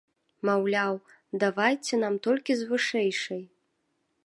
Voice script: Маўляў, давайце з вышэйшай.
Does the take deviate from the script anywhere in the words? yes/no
yes